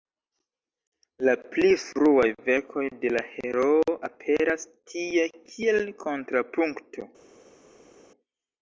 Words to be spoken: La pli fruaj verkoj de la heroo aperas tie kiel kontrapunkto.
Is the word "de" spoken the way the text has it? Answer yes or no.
yes